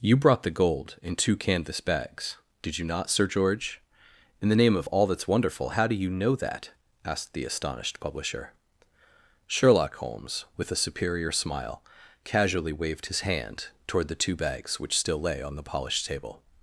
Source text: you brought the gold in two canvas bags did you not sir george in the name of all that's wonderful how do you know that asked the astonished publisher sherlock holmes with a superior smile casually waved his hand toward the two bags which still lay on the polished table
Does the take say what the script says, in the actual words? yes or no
yes